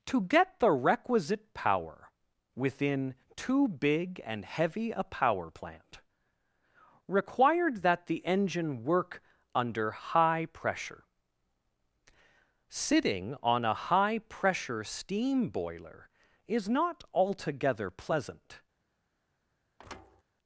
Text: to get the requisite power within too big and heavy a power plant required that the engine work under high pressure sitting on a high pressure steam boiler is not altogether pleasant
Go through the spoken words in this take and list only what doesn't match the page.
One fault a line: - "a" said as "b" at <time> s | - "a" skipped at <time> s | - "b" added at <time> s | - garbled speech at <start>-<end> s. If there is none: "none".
none